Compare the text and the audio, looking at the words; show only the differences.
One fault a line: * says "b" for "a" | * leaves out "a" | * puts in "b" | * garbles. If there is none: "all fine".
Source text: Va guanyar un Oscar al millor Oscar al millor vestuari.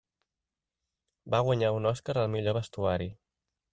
* leaves out "Oscar al millor"